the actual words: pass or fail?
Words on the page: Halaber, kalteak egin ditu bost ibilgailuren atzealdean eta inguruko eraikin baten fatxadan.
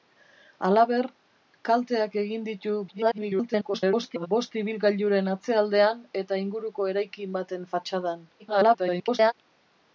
fail